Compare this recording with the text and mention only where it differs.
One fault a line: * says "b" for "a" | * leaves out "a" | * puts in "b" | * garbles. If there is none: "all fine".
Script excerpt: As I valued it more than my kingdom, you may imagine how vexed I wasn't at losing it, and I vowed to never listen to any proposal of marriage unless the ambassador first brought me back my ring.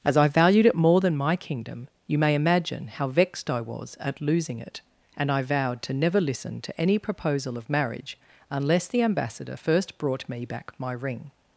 * says "was" for "wasn't"